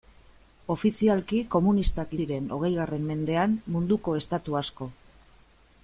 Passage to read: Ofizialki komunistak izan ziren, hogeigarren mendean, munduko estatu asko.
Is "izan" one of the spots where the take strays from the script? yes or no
yes